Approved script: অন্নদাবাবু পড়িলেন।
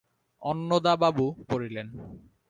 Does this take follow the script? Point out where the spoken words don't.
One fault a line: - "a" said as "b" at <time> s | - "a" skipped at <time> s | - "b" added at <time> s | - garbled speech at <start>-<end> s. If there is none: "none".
none